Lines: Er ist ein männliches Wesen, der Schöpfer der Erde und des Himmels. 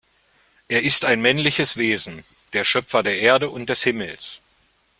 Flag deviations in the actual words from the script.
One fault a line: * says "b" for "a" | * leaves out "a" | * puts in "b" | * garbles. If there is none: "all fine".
all fine